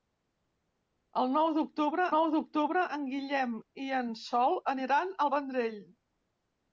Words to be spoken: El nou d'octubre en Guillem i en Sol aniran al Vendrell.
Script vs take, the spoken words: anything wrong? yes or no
yes